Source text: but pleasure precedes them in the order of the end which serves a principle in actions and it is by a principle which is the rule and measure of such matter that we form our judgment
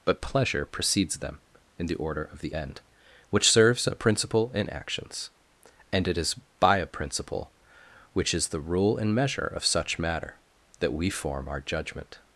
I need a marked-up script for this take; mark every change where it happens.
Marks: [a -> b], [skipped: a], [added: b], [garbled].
but pleasure precedes them in the order of the end which serves a principle in actions and it is by a principle which is the rule and measure of such matter that we form our judgment